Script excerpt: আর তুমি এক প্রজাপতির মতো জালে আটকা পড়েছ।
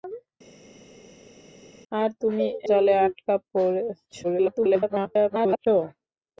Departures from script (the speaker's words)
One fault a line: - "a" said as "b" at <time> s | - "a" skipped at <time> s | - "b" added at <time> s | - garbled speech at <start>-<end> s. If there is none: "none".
- "এক প্রজাপতির মতো" skipped at 2.5 s
- garbled speech at 4.2-5.7 s